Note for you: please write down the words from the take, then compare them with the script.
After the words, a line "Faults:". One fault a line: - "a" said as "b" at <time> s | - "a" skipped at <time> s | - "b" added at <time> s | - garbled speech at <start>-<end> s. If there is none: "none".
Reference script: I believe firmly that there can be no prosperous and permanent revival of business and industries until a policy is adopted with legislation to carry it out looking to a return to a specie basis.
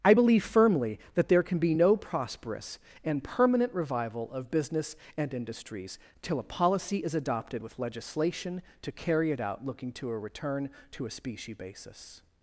I believe firmly that there can be no prosperous and permanent revival of business and industries till a policy is adopted with legislation to carry it out looking to a return to a specie basis.
Faults:
- "until" said as "till" at 6.2 s